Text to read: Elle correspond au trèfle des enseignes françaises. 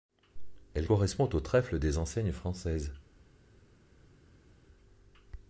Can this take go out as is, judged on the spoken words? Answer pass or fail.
pass